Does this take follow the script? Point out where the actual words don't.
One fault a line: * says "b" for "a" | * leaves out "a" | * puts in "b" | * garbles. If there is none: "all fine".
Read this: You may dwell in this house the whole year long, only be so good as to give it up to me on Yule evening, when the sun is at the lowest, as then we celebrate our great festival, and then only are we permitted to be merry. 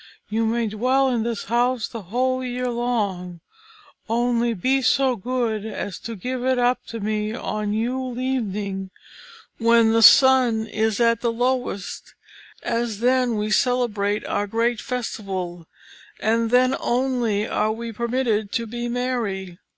all fine